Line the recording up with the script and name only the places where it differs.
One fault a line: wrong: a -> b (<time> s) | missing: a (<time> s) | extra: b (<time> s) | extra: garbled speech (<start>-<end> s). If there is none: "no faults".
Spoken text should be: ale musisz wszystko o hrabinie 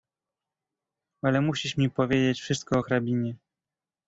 extra: mi powiedzieć (1.8 s)